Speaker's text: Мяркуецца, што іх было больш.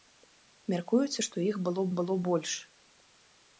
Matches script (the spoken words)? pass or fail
fail